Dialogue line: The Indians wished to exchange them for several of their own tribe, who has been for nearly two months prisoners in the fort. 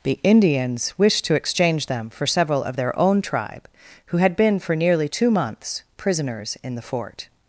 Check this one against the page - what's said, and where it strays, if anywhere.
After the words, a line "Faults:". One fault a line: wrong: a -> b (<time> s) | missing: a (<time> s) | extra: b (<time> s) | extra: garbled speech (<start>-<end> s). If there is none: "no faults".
The Indians wished to exchange them for several of their own tribe, who had been for nearly two months prisoners in the fort.
Faults:
wrong: has -> had (4.2 s)